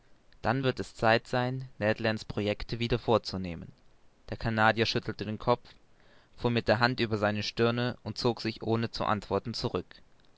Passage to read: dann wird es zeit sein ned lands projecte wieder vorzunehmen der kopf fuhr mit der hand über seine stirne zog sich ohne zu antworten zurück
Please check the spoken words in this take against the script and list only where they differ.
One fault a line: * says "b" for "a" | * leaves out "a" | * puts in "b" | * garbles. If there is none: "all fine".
* puts in "canadier schüttelte den"
* puts in "und"